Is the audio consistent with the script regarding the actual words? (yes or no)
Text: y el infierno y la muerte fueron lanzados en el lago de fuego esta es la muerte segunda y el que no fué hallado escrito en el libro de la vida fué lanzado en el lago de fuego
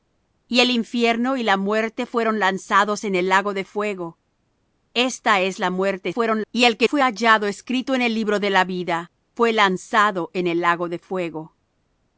no